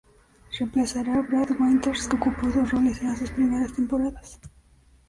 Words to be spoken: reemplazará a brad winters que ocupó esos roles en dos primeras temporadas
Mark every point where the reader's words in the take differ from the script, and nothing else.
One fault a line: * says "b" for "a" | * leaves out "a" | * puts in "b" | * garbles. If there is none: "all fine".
* puts in "las"